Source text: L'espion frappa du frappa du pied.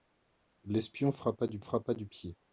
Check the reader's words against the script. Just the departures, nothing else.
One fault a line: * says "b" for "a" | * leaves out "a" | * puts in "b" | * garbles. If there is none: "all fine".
all fine